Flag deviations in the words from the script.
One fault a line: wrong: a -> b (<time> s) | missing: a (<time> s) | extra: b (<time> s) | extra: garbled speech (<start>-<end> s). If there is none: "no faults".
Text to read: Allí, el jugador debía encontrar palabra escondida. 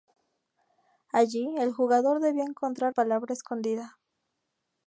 no faults